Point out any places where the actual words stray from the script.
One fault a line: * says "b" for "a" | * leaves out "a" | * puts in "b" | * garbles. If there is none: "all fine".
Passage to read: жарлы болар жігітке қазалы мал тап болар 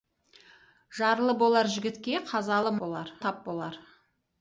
* says "болар" for "мал"